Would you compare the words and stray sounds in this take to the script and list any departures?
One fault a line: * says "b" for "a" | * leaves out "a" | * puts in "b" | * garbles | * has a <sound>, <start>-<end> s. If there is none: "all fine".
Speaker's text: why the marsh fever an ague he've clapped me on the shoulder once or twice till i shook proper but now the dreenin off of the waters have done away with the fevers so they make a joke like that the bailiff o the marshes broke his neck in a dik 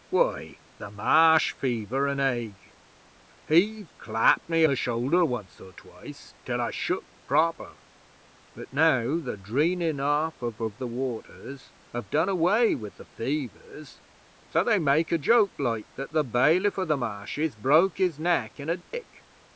* leaves out "on"
* puts in "of"
* has a dropout, 18.8-18.9 s